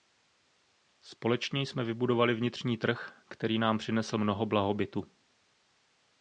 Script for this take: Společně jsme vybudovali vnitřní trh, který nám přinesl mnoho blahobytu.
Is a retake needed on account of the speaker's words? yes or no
no